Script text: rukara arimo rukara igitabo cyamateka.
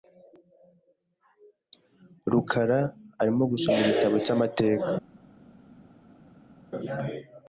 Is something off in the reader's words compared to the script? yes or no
yes